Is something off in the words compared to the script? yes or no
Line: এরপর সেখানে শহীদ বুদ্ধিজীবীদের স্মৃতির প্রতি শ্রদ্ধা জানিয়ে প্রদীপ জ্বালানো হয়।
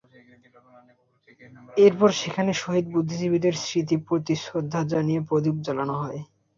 no